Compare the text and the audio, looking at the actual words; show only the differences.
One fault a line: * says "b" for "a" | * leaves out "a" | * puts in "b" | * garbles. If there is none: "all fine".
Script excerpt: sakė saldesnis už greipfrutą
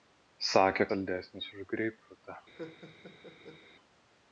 all fine